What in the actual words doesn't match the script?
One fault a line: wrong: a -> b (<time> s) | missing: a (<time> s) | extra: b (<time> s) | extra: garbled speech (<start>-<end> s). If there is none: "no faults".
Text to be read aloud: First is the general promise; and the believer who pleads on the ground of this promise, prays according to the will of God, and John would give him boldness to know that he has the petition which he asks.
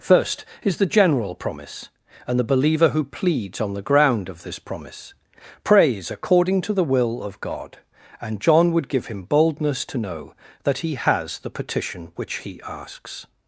no faults